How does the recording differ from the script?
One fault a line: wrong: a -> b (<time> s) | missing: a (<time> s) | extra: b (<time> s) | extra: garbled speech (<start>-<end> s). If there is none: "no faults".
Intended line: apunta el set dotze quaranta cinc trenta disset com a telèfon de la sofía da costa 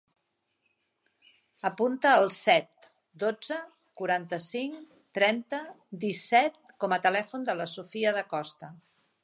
no faults